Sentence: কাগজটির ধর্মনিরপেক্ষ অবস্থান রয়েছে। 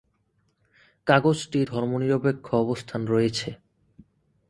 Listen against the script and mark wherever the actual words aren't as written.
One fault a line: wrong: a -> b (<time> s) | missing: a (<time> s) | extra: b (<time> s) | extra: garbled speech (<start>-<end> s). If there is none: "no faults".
no faults